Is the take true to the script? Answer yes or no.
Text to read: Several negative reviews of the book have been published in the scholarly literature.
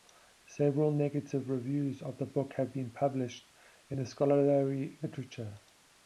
yes